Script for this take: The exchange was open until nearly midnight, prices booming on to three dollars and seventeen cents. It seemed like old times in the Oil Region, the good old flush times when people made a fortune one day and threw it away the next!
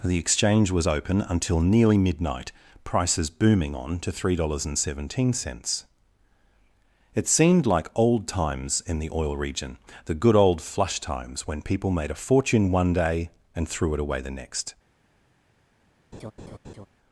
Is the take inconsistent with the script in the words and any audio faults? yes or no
yes